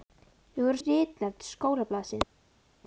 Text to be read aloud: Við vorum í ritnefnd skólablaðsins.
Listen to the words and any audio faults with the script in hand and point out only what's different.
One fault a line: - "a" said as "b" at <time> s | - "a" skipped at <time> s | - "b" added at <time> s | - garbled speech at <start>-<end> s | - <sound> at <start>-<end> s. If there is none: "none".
none